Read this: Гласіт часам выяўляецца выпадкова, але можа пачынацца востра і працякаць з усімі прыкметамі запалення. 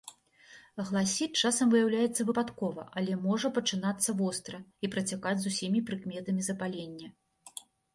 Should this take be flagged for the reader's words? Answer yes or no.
no